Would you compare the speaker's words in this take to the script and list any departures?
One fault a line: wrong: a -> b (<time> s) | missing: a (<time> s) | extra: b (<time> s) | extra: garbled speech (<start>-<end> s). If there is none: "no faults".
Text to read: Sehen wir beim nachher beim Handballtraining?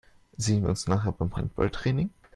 wrong: beim -> uns (0.7 s)